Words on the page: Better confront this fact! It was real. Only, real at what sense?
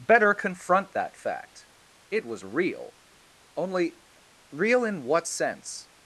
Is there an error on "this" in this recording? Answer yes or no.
yes